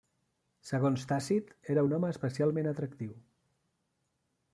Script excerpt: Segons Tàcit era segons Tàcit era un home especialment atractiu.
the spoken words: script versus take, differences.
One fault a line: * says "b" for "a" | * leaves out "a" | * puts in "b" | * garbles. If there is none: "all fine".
* leaves out "segons Tàcit era"